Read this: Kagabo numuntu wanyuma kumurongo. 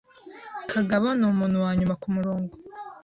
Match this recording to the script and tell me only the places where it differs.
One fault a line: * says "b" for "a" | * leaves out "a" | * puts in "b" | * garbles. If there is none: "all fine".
all fine